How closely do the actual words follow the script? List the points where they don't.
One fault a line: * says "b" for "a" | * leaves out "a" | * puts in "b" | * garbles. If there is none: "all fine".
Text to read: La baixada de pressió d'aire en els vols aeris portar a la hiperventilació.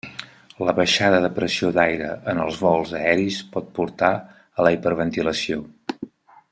* puts in "pot"